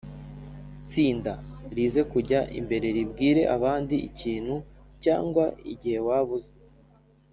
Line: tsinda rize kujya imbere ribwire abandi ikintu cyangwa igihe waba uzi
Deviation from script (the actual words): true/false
false